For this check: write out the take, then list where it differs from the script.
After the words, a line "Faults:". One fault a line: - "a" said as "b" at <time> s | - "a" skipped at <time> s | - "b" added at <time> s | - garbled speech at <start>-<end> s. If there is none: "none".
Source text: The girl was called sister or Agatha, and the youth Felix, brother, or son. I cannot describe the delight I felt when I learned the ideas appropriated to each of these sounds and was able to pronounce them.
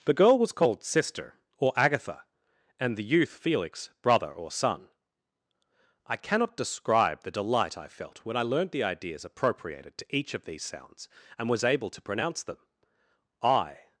The girl was called sister or Agatha, and the youth Felix, brother, or son. I cannot describe the delight I felt when I learned the ideas appropriated to each of these sounds and was able to pronounce them. I
Faults:
- "I" added at 13.4 s